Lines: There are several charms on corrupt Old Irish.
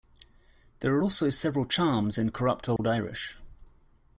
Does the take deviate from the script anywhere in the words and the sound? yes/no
yes